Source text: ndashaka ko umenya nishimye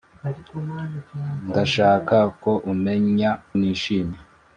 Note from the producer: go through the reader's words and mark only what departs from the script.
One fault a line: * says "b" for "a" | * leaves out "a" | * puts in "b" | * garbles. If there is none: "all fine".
all fine